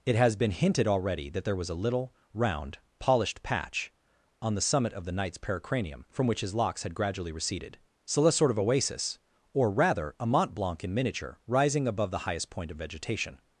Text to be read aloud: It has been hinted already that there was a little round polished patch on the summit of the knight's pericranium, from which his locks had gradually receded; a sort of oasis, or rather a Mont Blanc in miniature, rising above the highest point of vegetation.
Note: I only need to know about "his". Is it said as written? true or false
true